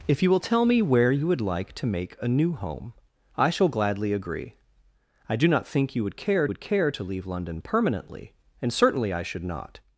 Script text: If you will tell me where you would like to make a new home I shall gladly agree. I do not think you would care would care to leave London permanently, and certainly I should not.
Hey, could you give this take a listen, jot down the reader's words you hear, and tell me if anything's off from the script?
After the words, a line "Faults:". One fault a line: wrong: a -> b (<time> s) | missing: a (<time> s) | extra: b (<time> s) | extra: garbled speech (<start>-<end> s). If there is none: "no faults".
If you will tell me where you would like to make a new home I shall gladly agree. I do not think you would care would care to leave London permanently, and certainly I should not.
Faults:
no faults